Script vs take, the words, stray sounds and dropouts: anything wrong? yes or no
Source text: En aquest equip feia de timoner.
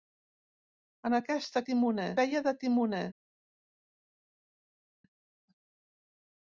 yes